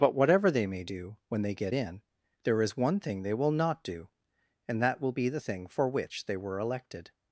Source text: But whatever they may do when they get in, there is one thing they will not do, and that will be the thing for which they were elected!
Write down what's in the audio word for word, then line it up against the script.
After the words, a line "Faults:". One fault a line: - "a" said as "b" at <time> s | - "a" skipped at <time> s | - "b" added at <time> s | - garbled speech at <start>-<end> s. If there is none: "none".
But whatever they may do when they get in, there is one thing they will not do, and that will be the thing for which they were elected!
Faults:
none